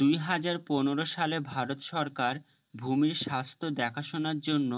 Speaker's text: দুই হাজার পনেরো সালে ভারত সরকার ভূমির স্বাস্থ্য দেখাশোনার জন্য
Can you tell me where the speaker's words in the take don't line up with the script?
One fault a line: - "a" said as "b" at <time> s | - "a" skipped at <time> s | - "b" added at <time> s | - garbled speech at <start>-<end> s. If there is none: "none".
none